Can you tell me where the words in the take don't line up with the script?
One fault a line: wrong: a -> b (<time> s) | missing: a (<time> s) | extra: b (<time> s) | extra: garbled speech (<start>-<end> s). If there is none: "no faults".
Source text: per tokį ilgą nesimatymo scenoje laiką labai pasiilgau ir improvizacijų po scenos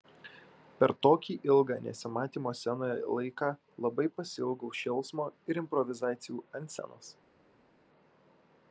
extra: šėlsmo (4.8 s)
wrong: po -> ant (6.6 s)